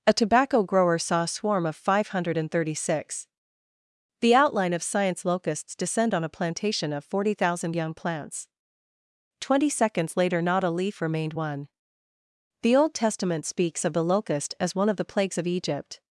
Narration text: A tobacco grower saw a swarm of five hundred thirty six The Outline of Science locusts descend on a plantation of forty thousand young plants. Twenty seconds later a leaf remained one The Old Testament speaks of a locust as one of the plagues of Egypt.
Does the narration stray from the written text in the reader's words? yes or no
yes